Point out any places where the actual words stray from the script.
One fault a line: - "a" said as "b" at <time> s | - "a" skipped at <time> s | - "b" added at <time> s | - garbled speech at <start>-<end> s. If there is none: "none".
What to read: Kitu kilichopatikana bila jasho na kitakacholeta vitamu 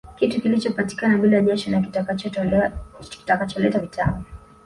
none